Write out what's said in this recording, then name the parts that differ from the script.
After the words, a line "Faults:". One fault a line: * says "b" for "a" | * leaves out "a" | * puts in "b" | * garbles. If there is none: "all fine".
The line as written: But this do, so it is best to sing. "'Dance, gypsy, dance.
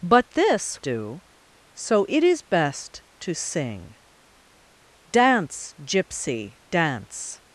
But this do, so it is best to sing. "'Dance, gypsy, dance.
Faults:
all fine